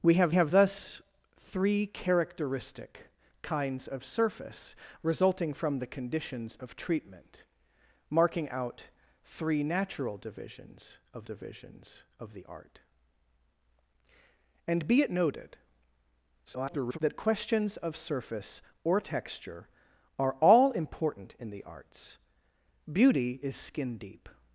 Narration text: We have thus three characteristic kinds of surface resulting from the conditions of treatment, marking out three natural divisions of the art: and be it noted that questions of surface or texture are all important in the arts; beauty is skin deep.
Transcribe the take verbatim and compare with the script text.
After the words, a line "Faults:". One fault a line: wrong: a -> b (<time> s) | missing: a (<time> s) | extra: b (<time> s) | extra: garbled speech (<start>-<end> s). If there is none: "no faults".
We have have thus three characteristic kinds of surface resulting from the conditions of treatment, marking out three natural divisions of divisions of the art: and be it noted [garbled] that questions of surface or texture are all important in the arts; beauty is skin deep.
Faults:
extra: have (0.3 s)
extra: divisions of (11.2 s)
extra: garbled speech (16.5-17.0 s)